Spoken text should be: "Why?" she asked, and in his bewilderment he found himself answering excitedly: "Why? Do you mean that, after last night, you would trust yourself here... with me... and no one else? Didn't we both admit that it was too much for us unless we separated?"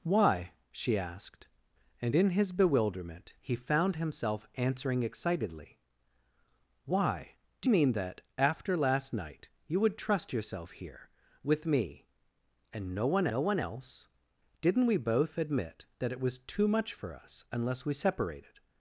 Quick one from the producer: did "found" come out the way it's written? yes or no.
yes